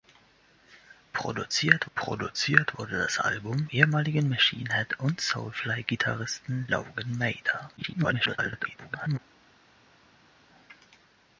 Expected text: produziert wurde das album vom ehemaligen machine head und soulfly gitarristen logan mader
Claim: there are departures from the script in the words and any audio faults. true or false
true